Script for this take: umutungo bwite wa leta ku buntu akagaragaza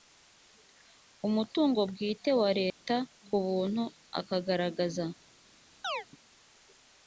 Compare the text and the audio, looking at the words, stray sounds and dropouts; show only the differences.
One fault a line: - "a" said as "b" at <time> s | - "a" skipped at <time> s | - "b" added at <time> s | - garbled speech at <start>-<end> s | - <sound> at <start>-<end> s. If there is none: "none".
- dropout at 2.7-2.8 s
- chirp at 5.8-6.1 s